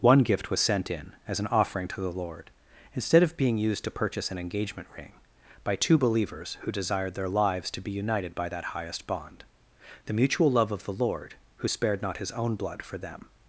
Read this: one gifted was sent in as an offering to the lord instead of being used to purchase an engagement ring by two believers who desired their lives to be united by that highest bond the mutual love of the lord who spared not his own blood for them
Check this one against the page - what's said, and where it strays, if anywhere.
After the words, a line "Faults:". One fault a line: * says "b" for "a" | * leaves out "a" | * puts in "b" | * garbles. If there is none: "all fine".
one gift was sent in as an offering to the lord instead of being used to purchase an engagement ring by two believers who desired their lives to be united by that highest bond the mutual love of the lord who spared not his own blood for them
Faults:
* says "gift" for "gifted"